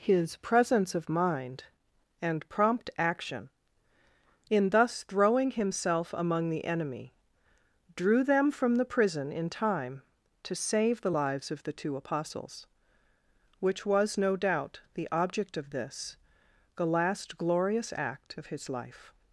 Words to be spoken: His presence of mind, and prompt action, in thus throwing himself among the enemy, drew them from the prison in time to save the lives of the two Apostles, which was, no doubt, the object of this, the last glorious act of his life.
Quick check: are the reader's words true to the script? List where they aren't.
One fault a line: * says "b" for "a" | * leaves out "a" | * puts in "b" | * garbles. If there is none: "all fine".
all fine